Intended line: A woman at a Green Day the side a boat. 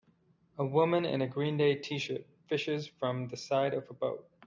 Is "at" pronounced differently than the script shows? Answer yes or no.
yes